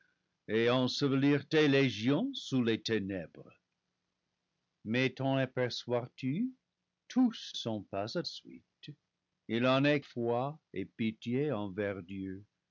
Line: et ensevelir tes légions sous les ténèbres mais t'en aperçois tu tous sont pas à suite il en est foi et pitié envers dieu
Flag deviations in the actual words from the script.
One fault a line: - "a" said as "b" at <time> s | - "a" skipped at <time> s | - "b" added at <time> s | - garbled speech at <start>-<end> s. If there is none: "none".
none